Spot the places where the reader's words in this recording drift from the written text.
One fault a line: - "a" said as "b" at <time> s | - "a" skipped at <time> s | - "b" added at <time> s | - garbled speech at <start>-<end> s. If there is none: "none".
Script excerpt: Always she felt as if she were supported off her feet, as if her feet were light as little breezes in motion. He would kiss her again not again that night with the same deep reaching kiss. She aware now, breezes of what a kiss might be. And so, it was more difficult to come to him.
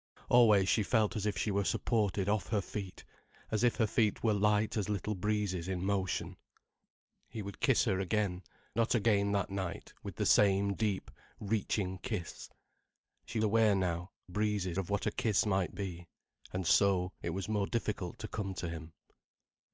none